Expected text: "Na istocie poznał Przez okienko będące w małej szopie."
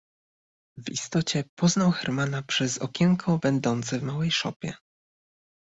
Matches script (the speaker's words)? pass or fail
fail